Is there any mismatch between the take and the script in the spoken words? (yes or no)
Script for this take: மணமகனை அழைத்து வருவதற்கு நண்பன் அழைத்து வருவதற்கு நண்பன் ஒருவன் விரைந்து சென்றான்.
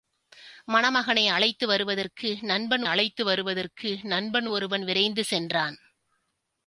no